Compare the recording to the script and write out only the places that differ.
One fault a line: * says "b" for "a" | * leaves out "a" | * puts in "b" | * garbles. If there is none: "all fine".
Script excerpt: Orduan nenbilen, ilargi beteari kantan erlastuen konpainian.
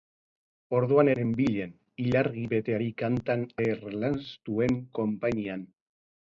all fine